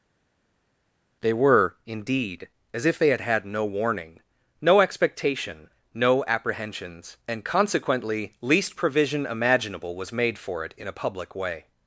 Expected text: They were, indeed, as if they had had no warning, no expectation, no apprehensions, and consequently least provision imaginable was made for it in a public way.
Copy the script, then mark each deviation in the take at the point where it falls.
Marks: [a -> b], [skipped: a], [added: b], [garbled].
They were, indeed, as if they had had no warning, no expectation, no apprehensions, and consequently least provision imaginable was made for it in a public way.